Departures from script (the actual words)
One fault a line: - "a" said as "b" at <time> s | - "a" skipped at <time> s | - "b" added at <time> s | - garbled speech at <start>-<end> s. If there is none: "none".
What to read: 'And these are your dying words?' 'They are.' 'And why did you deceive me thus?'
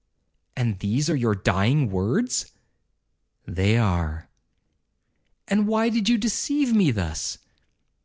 none